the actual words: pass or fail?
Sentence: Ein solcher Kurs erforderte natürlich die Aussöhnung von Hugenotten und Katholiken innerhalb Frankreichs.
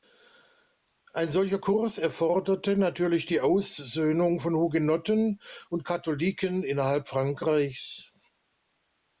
pass